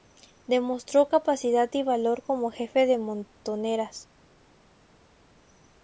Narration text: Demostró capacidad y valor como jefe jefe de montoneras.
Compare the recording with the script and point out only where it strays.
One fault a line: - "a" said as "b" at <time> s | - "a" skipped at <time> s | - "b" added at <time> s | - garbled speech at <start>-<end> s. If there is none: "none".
- "jefe" skipped at 2.8 s